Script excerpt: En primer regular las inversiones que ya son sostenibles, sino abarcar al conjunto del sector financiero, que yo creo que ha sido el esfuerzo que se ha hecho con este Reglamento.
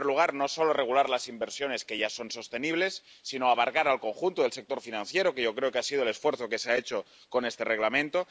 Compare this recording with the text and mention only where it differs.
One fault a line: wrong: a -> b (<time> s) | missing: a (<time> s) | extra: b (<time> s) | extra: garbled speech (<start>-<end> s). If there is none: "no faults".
extra: lugar no solo (0.1 s)